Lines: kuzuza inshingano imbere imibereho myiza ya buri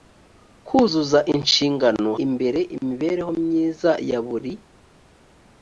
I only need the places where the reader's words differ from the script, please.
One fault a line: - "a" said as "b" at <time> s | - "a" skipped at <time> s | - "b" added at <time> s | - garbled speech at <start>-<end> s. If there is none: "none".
none